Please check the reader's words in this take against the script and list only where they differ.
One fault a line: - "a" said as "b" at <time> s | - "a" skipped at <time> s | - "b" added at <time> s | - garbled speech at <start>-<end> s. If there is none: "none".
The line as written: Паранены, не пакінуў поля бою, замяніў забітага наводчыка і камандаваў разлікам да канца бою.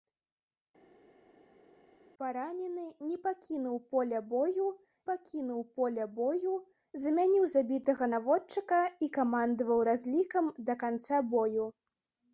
- "пакінуў поля бою" added at 5.1 s